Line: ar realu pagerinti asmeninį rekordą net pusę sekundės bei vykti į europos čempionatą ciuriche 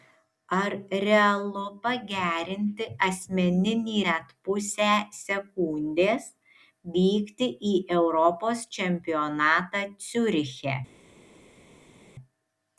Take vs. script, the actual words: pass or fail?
fail